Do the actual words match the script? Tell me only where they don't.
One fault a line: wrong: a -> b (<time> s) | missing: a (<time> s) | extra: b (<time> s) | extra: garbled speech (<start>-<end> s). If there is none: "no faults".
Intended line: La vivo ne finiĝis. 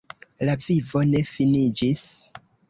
no faults